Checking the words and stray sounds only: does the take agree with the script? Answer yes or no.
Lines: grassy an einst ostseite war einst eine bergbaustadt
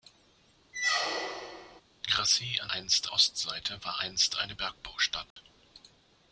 no